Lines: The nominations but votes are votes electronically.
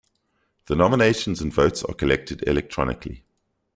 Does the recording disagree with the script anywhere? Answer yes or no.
yes